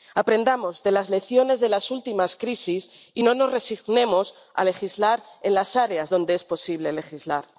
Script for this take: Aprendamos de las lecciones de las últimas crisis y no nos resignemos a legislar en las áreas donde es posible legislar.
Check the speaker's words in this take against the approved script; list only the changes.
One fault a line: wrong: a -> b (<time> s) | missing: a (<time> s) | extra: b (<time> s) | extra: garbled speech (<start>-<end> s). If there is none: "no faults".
no faults